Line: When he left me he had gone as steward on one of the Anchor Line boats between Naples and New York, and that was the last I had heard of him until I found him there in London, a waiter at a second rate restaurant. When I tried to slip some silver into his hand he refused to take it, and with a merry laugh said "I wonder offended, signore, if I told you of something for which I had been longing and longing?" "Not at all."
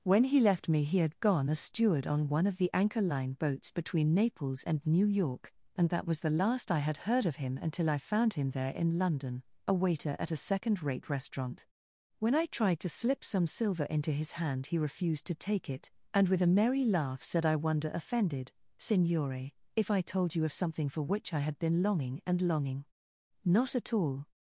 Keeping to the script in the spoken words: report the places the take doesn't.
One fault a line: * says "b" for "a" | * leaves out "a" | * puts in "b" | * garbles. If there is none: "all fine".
all fine